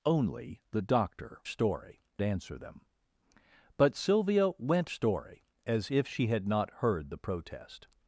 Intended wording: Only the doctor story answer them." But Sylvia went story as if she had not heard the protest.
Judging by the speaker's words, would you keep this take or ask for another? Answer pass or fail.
pass